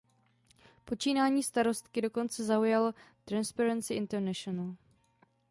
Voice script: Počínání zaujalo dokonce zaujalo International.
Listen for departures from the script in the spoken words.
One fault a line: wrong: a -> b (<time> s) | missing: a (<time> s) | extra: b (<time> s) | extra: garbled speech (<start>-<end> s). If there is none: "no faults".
wrong: zaujalo -> starostky (1.4 s)
extra: Transparency (3.3 s)